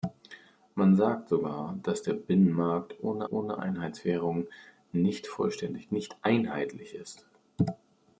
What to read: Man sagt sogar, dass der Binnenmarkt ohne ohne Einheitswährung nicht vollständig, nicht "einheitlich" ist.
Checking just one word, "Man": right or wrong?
right